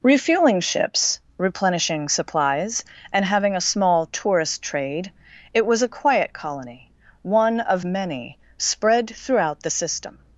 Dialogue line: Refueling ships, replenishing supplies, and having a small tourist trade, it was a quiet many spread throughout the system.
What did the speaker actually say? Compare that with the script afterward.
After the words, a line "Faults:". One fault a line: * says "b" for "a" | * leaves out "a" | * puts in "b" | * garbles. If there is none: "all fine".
Refueling ships, replenishing supplies, and having a small tourist trade, it was a quiet colony, one of many spread throughout the system.
Faults:
* puts in "colony one of"